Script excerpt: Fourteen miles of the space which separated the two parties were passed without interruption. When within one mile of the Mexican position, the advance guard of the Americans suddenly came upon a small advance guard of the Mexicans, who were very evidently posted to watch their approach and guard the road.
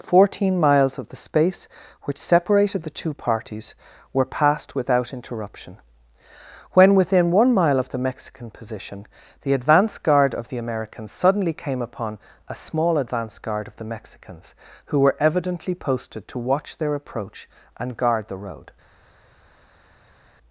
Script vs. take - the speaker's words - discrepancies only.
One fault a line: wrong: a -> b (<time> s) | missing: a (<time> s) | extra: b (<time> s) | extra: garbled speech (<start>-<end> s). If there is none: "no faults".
missing: very (15.2 s)